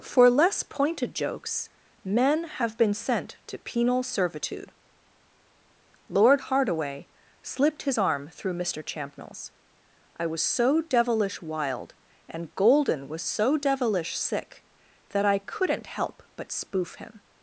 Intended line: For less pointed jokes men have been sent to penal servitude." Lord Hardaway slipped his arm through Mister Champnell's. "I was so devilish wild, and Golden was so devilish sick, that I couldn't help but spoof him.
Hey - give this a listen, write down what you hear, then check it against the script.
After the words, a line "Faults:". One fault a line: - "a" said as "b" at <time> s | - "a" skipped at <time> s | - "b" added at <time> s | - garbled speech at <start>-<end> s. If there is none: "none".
For less pointed jokes men have been sent to penal servitude." Lord Hardaway slipped his arm through Mister Champnell's. "I was so devilish wild, and Golden was so devilish sick, that I couldn't help but spoof him.
Faults:
none